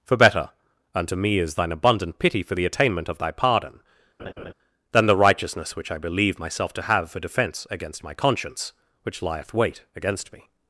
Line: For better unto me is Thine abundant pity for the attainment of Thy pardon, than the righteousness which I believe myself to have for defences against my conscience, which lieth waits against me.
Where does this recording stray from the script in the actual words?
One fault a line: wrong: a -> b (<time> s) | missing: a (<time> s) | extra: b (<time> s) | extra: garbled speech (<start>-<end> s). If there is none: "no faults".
wrong: defences -> defence (7.2 s)
wrong: waits -> wait (9.5 s)